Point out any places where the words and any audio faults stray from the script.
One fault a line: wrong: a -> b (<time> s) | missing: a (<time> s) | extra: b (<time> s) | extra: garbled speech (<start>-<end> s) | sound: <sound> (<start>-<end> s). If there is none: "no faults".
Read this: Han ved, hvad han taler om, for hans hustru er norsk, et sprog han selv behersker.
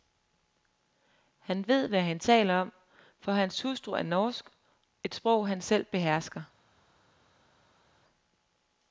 no faults